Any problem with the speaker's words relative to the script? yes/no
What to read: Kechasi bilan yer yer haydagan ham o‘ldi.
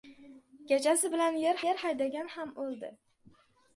no